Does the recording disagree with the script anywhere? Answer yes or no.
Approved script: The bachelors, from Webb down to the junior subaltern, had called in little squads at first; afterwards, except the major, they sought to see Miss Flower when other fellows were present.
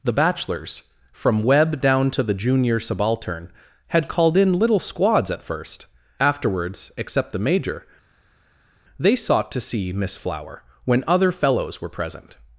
no